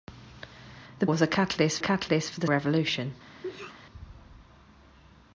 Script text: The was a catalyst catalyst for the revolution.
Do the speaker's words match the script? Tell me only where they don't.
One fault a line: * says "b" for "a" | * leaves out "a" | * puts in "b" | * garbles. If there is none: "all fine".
all fine